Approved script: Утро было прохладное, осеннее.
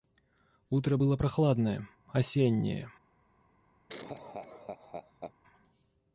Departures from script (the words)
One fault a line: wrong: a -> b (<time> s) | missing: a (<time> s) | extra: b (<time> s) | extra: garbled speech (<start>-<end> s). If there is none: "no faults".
no faults